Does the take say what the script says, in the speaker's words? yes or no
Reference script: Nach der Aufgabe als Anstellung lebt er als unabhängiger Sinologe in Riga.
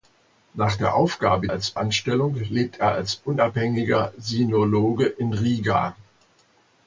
yes